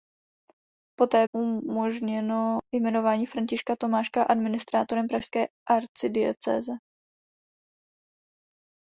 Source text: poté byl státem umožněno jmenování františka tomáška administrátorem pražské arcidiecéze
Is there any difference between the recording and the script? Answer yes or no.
yes